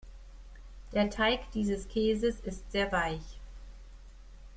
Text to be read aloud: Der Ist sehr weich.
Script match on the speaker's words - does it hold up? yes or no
no